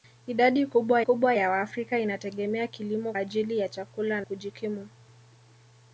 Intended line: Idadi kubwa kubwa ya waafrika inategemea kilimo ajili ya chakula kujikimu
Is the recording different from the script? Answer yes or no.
no